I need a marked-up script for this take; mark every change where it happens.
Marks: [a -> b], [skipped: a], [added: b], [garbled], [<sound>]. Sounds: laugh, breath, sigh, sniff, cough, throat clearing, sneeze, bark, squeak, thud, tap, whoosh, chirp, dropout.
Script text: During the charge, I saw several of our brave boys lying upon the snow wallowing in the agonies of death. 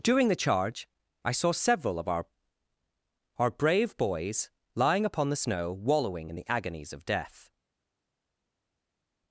During the charge, I saw several of our [added: our] brave boys lying upon the snow wallowing in the agonies of death.